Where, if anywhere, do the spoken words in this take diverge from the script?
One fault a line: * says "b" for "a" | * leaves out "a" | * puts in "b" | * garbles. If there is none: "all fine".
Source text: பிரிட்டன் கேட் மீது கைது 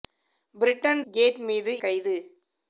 all fine